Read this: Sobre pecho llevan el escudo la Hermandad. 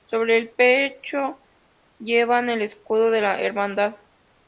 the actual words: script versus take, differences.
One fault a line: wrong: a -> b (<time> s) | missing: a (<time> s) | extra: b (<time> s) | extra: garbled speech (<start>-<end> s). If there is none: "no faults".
extra: el (0.4 s)
extra: de (3.1 s)